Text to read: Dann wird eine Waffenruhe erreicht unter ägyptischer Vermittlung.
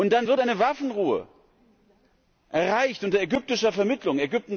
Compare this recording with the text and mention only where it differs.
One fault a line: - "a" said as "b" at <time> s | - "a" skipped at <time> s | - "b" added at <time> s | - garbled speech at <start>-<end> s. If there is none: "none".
none